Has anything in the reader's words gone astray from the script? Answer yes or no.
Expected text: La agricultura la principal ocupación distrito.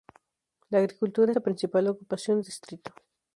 no